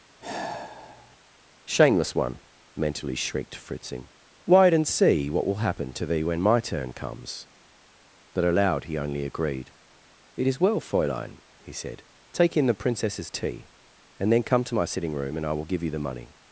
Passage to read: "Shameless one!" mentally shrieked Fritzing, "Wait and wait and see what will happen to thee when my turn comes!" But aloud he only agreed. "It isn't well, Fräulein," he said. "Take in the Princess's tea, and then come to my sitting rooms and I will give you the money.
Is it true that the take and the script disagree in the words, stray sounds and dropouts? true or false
true